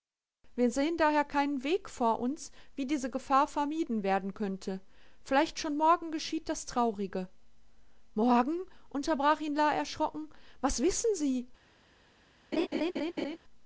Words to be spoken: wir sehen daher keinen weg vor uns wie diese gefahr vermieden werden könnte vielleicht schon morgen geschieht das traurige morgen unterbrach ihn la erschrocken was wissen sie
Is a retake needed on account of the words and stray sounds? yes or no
yes